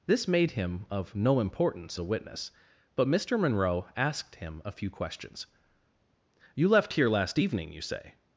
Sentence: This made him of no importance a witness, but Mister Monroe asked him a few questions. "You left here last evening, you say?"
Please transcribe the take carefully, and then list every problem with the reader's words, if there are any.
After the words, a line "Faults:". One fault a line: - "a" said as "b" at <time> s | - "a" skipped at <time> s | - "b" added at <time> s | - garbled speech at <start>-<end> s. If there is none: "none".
This made him of no importance a witness, but Mister Monroe asked him a few questions. "You left here last evening, you say?"
Faults:
none